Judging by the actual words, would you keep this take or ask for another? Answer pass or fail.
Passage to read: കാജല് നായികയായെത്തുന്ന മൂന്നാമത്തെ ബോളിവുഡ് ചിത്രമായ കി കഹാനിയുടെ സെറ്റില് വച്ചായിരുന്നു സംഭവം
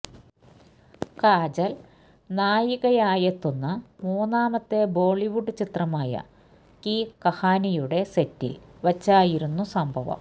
pass